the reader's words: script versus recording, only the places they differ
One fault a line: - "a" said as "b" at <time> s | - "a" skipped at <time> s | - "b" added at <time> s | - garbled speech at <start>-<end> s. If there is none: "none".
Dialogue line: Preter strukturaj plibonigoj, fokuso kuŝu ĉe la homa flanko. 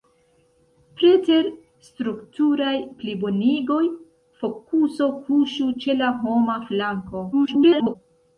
- garbled speech at 7.3-8.0 s